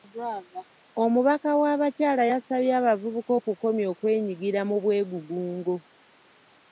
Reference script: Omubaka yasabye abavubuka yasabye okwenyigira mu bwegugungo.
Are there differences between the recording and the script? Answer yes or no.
yes